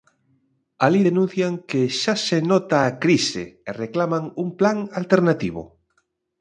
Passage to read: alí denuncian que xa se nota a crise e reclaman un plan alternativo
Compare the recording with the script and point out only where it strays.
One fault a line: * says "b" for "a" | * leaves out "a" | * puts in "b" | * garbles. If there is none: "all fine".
all fine